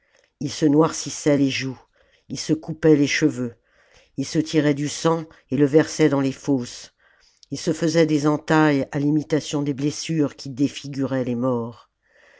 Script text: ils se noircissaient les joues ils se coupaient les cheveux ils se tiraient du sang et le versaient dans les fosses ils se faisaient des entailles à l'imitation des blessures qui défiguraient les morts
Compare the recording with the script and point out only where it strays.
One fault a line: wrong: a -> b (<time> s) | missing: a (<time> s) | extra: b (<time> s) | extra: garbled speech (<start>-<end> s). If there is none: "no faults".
no faults